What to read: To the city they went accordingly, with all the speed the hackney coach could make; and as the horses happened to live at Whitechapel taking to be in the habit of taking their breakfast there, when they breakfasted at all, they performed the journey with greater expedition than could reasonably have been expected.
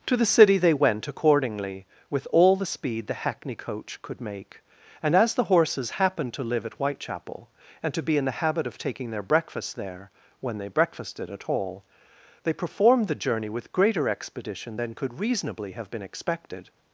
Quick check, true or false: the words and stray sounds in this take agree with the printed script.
false